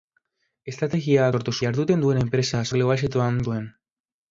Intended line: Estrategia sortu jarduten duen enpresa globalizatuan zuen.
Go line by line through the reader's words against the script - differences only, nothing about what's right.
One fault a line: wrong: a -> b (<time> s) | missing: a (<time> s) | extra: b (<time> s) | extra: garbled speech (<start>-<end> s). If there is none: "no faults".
no faults